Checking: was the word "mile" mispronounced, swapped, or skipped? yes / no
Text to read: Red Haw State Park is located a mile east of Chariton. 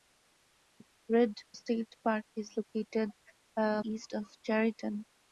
yes